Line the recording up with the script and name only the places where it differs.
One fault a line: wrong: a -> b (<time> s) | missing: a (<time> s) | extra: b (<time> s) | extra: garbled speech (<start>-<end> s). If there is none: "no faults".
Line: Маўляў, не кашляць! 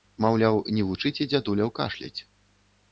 extra: вучыце дзядуляў (0.9 s)